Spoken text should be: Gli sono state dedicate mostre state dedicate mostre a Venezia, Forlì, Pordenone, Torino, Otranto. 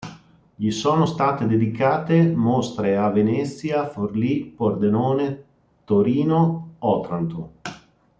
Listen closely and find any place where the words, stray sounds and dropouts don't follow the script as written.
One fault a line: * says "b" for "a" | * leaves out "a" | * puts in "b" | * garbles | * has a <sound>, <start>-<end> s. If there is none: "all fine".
* leaves out "state dedicate mostre"